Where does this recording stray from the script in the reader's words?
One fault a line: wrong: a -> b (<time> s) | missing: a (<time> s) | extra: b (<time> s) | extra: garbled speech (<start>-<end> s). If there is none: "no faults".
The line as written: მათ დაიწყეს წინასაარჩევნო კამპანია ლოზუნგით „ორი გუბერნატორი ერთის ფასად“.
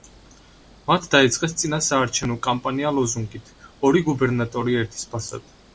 no faults